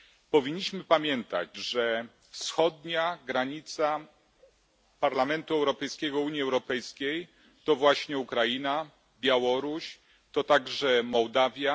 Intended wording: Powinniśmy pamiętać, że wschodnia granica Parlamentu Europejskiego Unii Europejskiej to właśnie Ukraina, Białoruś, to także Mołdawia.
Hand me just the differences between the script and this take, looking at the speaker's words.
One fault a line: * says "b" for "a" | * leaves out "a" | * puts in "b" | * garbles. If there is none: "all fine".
all fine